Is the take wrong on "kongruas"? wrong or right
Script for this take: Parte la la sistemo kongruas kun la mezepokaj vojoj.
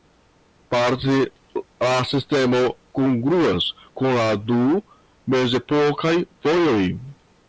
right